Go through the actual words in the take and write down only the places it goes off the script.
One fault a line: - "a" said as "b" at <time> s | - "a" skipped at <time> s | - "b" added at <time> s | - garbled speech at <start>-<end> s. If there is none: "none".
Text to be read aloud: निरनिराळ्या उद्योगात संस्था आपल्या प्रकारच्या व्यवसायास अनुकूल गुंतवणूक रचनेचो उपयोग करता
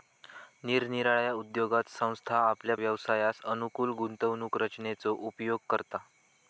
- "प्रकारच्या" skipped at 2.8 s